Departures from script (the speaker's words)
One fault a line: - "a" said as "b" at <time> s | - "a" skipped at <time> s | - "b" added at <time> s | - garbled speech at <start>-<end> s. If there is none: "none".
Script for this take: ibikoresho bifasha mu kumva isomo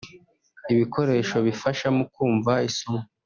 none